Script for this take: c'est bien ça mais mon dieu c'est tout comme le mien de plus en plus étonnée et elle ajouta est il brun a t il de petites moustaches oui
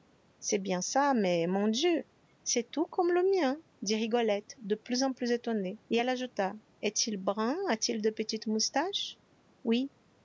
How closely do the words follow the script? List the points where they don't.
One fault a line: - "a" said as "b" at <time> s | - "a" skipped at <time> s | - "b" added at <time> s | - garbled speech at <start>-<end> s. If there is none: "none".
- "dit rigolette" added at 3.8 s